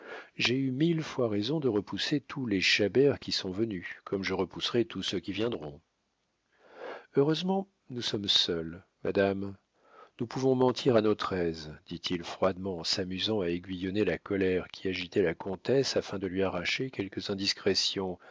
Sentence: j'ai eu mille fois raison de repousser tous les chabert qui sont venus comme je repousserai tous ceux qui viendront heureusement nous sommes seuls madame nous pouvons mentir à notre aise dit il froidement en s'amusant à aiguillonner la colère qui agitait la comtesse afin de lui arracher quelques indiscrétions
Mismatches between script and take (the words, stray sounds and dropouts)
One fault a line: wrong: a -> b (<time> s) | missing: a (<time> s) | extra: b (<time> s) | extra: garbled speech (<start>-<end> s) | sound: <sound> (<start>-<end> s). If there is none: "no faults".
no faults